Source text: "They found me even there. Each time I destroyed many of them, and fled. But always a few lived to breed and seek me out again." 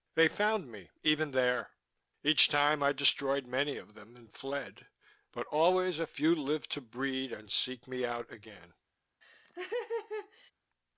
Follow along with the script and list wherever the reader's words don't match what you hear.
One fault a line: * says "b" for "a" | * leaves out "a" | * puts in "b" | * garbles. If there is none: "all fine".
all fine